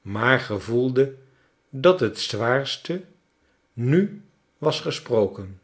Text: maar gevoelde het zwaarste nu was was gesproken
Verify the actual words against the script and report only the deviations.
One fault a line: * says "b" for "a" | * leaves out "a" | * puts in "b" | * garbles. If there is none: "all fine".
* puts in "dat"
* leaves out "was"